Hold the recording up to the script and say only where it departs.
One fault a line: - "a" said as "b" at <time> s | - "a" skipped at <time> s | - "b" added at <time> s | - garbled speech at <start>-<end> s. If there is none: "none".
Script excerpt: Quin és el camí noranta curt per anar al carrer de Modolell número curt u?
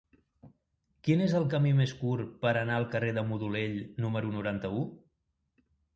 - "noranta" said as "més" at 1.8 s
- "curt" said as "noranta" at 4.4 s